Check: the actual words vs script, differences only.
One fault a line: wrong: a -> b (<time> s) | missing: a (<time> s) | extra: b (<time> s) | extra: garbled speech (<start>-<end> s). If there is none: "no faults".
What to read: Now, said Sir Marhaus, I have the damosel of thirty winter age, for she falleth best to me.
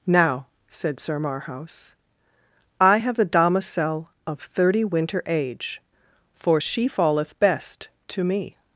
no faults